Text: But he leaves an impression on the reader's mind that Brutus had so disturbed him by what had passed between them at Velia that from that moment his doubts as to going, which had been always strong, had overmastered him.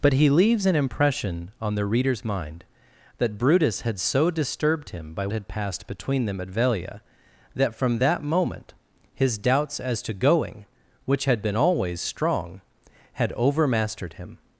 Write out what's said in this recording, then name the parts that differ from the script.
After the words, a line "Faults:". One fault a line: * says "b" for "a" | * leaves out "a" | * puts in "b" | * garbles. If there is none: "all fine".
But he leaves an impression on the reader's mind that Brutus had so disturbed him by had passed between them at Velia that from that moment his doubts as to going, which had been always strong, had overmastered him.
Faults:
* leaves out "what"